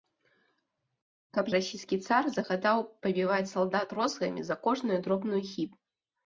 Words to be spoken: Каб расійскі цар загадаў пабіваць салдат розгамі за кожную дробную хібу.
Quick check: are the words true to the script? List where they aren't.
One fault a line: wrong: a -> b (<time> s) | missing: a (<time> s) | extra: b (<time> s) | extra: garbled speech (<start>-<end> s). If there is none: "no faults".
no faults